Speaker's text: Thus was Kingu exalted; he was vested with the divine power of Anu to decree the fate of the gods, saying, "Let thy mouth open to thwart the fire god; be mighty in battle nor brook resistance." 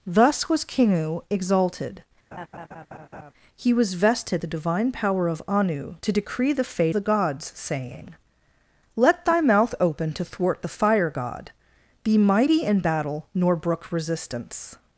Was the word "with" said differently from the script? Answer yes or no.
yes